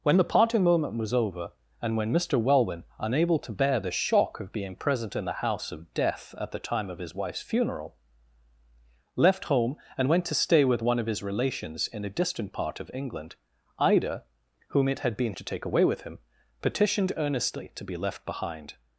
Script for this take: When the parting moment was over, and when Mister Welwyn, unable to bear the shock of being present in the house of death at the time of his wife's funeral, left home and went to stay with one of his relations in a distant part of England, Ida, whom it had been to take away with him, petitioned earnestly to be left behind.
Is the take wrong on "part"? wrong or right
right